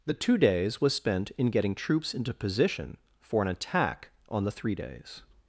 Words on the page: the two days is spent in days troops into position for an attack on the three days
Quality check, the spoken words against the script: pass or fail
fail